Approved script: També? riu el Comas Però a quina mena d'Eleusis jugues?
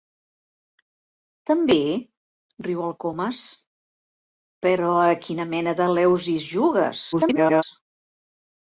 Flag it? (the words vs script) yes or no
yes